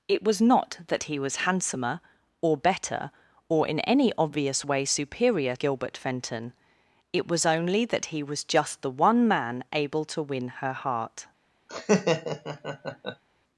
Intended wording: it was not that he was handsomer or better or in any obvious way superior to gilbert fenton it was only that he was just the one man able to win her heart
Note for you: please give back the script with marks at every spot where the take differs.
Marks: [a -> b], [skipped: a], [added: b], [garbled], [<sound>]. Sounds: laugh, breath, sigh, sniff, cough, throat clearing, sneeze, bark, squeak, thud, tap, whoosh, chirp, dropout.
it was not that he was handsomer or better or in any obvious way superior [skipped: to] gilbert fenton it was only that he was just the one man able to win her heart [laugh]